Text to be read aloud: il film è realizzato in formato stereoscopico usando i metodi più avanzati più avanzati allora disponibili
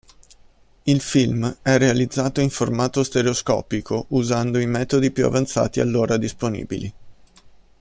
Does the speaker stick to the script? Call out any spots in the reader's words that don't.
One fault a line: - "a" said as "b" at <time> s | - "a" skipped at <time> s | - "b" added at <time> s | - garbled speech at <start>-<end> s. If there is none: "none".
- "più avanzati" skipped at 5.8 s